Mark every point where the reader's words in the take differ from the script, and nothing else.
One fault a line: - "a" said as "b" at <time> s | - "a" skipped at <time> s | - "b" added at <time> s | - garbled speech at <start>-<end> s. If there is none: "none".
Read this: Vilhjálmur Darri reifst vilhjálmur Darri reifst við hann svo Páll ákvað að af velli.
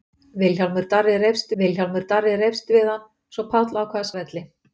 none